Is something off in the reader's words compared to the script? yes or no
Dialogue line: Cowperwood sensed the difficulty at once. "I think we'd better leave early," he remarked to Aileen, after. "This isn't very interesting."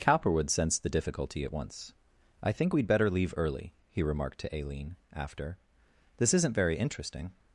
no